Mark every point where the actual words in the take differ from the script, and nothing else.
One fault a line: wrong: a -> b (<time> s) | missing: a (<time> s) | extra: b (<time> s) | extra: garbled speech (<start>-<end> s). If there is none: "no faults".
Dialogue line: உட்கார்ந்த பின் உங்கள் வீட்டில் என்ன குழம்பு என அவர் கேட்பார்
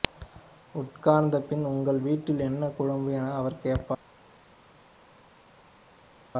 no faults